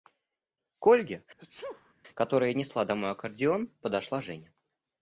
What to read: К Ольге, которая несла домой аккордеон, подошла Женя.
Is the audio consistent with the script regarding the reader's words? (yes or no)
yes